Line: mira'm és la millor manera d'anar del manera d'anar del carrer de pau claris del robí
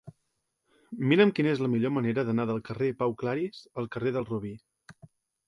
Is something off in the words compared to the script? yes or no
yes